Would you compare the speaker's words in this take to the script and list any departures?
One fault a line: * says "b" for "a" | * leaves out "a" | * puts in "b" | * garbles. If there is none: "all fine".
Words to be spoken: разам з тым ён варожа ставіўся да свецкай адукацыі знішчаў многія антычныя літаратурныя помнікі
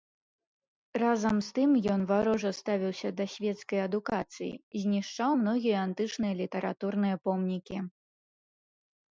all fine